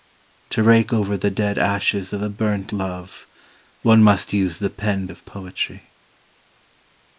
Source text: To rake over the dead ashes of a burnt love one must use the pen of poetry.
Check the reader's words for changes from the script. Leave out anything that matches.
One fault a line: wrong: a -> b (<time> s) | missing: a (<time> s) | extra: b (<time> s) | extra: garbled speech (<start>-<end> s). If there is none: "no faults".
no faults